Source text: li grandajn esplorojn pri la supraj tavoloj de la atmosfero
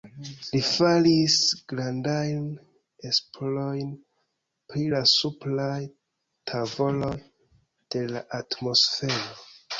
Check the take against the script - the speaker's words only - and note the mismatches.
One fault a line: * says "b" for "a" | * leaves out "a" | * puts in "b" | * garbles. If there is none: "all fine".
* puts in "faris"